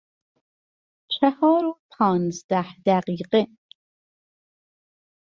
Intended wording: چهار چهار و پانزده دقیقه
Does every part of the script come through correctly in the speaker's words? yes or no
no